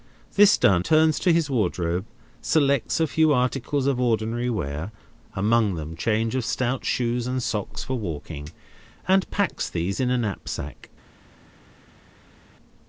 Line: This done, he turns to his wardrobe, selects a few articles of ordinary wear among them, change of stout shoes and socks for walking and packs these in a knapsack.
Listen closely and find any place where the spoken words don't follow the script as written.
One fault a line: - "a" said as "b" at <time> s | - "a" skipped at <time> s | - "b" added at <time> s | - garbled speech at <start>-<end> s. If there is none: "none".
- "he" skipped at 0.8 s